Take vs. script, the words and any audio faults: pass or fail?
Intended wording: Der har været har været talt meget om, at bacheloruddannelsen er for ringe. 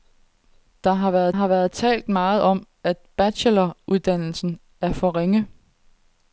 pass